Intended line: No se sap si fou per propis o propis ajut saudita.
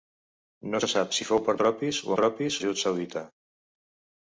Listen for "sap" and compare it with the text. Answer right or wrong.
right